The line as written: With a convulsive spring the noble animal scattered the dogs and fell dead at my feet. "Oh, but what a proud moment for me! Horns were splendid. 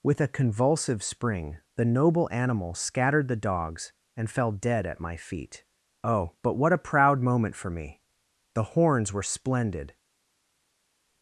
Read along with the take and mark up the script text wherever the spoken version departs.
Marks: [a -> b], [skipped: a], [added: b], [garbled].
With a convulsive spring the noble animal scattered the dogs and fell dead at my feet. "Oh, but what a proud moment for me! [added: The] Horns were splendid.